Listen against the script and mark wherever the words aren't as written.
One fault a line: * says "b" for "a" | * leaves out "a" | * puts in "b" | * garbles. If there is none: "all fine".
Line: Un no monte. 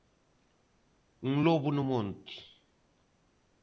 * puts in "lobo"